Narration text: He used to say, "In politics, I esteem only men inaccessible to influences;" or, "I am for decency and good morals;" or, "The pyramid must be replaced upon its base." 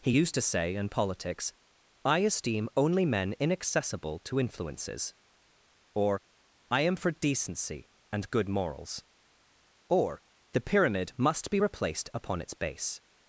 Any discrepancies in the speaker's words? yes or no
no